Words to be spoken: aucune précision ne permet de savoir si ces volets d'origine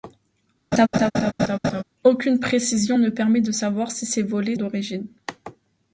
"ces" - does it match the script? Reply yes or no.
yes